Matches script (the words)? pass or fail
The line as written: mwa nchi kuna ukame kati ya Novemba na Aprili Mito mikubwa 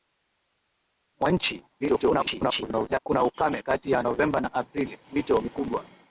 fail